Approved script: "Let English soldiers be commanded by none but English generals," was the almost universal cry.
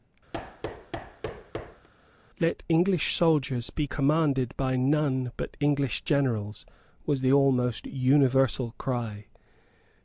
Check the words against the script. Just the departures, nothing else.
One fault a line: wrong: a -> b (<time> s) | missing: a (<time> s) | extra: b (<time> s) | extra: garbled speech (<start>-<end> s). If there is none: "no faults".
no faults